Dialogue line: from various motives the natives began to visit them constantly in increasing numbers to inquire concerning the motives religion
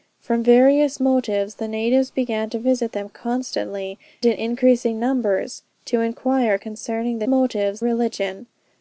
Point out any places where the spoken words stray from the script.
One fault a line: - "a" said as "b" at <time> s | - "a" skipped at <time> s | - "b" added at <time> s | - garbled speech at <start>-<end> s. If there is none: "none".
none